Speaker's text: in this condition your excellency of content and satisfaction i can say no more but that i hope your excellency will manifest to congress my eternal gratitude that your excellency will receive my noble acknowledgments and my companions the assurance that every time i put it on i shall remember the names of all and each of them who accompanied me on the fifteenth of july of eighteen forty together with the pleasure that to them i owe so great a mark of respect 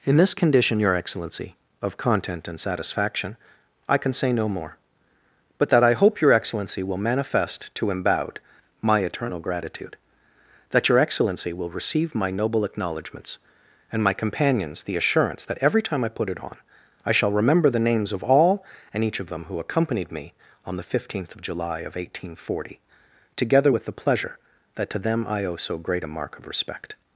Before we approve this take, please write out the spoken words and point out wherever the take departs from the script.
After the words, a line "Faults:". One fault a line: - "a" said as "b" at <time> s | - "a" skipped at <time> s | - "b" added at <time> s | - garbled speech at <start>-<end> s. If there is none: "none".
in this condition your excellency of content and satisfaction i can say no more but that i hope your excellency will manifest to embowed my eternal gratitude that your excellency will receive my noble acknowledgments and my companions the assurance that every time i put it on i shall remember the names of all and each of them who accompanied me on the fifteenth of july of eighteen forty together with the pleasure that to them i owe so great a mark of respect
Faults:
- "congress" said as "embowed" at 7.9 s